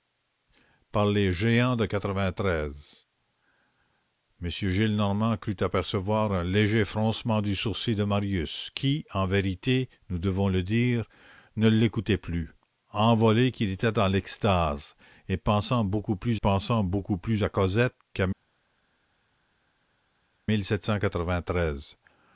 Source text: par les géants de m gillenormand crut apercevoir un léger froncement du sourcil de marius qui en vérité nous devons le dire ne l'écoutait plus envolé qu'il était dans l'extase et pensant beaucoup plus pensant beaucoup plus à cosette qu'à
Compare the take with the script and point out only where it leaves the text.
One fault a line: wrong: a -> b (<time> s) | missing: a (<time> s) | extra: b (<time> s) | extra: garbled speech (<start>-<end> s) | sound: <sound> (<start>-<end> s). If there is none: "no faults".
no faults